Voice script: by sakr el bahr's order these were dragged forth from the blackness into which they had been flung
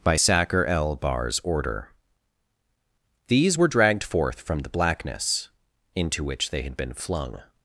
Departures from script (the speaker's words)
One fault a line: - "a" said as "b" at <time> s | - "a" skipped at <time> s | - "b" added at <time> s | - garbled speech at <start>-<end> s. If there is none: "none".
none